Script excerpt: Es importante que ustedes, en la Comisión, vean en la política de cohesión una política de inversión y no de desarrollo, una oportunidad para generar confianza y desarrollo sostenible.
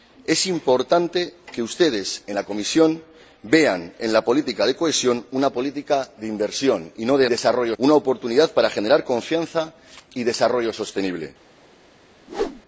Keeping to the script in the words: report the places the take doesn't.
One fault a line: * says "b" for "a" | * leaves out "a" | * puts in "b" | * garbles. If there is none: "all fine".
all fine